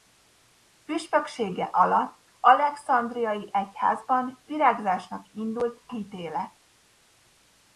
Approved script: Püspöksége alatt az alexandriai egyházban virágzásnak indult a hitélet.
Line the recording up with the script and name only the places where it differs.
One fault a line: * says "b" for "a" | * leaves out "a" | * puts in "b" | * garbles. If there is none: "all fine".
* leaves out "az"
* leaves out "a"